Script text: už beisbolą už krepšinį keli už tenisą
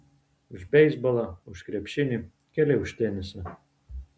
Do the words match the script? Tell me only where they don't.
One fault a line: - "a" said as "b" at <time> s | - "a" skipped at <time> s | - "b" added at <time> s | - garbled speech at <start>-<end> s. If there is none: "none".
none